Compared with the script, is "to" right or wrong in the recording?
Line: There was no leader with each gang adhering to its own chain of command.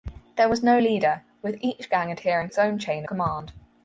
wrong